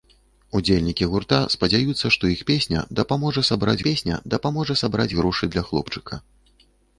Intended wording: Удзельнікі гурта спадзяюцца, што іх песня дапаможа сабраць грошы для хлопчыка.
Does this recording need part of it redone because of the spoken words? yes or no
yes